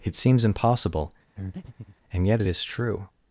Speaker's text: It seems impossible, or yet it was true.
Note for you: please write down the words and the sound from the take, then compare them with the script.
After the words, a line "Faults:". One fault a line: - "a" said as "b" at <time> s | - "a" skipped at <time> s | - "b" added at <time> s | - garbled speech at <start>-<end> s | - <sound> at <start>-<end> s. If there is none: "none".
It seems impossible, and yet it is true.
Faults:
- breath at 1.4-2.0 s
- "or" said as "and" at 2.1 s
- "was" said as "is" at 2.5 s